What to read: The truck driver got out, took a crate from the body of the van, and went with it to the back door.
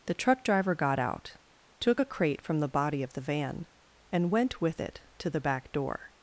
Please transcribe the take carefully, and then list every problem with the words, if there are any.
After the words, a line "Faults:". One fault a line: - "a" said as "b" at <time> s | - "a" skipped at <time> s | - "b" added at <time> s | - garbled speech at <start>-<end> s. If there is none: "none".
The truck driver got out, took a crate from the body of the van, and went with it to the back door.
Faults:
none